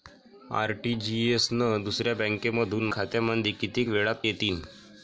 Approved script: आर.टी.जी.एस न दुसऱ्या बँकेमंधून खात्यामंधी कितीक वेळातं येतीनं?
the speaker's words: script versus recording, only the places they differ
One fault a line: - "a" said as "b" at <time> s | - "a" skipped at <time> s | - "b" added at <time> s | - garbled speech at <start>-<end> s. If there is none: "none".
none